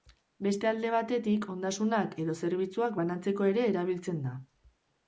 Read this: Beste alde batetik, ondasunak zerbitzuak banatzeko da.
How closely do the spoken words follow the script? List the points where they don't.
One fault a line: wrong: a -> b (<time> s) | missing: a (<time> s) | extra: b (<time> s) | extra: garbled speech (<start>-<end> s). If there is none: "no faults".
extra: edo (2.3 s)
extra: ere erabiltzen (3.5 s)